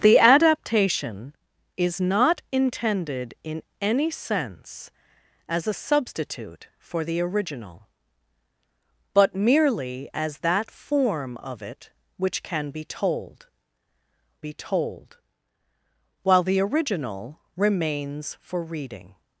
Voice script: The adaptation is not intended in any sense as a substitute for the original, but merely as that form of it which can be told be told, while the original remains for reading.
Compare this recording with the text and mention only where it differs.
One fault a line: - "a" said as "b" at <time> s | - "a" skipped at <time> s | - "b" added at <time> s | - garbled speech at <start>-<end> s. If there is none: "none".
none